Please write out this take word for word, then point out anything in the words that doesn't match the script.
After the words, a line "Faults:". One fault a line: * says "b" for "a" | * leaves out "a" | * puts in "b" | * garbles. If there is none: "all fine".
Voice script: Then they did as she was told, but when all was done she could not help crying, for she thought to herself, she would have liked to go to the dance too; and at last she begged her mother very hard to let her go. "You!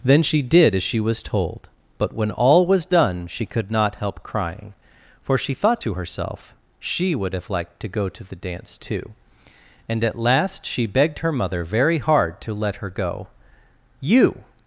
Then she did as she was told, but when all was done she could not help crying, for she thought to herself, she would have liked to go to the dance too; and at last she begged her mother very hard to let her go. "You!
Faults:
* says "she" for "they"